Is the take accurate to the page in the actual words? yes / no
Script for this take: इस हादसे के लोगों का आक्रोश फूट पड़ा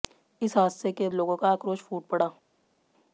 yes